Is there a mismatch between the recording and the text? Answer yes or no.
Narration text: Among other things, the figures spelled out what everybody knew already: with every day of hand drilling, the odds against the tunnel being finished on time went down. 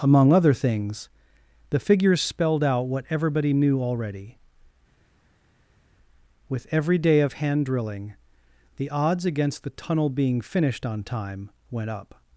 yes